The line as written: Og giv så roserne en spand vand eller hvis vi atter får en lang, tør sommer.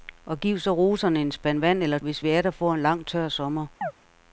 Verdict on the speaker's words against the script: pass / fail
pass